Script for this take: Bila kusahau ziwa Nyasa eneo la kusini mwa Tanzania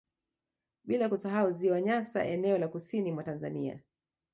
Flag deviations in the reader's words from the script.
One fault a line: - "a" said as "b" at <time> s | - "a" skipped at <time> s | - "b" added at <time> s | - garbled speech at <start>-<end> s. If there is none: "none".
none